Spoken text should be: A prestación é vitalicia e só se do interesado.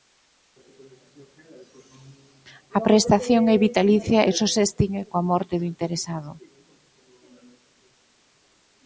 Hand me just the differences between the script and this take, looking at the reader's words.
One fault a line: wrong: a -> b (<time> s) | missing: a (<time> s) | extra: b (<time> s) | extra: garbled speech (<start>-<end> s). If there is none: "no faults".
extra: extingue coa morte (4.7 s)